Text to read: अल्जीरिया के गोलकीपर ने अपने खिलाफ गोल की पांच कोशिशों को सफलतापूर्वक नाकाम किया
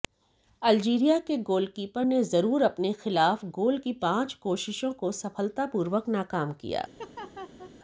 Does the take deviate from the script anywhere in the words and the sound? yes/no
yes